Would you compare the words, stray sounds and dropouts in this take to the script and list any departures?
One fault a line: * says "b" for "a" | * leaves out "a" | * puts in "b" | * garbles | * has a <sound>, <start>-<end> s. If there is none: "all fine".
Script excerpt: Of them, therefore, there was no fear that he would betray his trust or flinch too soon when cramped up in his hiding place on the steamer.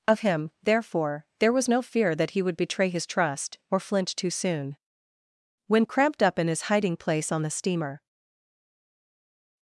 * says "him" for "them"